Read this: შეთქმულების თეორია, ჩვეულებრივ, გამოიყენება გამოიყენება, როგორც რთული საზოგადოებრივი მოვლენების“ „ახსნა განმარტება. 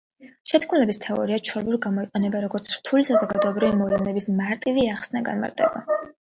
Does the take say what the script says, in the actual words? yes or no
no